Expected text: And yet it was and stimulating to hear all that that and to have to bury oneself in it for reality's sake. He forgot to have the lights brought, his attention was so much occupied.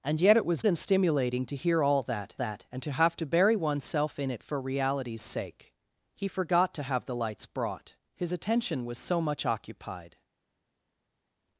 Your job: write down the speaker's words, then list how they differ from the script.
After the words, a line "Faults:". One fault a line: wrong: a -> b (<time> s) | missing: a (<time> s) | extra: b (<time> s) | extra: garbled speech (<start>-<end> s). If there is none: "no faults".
And yet it was and stimulating to hear all that that and to have to bury oneself in it for reality's sake. He forgot to have the lights brought, his attention was so much occupied.
Faults:
no faults